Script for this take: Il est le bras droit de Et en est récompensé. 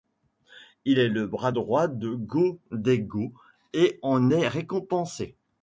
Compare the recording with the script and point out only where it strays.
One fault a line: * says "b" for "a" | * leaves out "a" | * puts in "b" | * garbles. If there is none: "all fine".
* puts in "Go Daigo"